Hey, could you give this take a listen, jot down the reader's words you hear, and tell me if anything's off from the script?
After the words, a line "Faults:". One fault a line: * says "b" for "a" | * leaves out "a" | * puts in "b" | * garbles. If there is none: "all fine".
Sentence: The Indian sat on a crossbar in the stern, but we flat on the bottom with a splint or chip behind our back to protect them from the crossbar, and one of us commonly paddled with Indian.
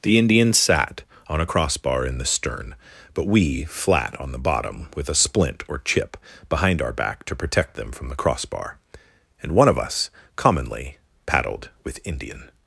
The Indian sat on a crossbar in the stern, but we flat on the bottom with a splint or chip behind our back to protect them from the crossbar, and one of us commonly paddled with Indian.
Faults:
all fine